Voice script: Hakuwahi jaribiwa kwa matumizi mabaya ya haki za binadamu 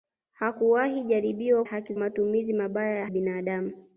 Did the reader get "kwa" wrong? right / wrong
wrong